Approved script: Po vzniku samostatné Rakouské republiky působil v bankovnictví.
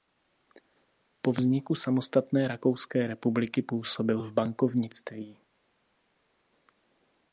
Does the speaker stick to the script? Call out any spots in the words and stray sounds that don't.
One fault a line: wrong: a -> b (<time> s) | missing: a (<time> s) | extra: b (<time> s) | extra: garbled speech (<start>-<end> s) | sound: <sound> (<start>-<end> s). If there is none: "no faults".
no faults